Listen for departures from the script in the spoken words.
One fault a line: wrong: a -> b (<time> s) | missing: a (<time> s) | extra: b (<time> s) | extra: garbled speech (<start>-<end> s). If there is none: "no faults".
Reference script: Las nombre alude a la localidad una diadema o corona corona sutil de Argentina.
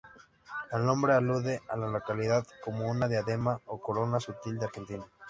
wrong: Las -> El (0.7 s)
extra: como (2.6 s)
missing: corona (4.2 s)